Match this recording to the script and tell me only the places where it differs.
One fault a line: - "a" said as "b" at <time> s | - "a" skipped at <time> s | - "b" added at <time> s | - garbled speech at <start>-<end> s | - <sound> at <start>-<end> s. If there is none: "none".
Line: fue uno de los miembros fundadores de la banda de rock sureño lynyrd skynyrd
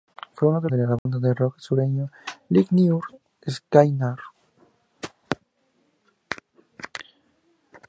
- "los miembros fundadores" skipped at 0.7 s
- dropout at 1.0-1.1 s